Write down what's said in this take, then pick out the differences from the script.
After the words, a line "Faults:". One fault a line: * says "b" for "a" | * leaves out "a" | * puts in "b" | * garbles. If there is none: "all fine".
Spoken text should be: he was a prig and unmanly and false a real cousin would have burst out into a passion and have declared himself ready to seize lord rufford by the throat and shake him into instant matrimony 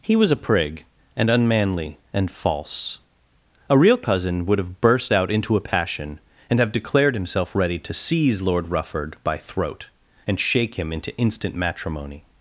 he was a prig and unmanly and false a real cousin would have burst out into a passion and have declared himself ready to seize lord rufford by throat and shake him into instant matrimony
Faults:
* leaves out "the"